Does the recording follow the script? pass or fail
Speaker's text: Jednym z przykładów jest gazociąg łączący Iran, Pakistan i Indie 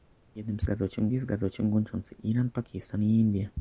fail